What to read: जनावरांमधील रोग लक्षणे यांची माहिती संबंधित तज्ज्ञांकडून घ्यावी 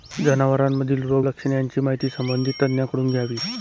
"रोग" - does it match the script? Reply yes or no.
yes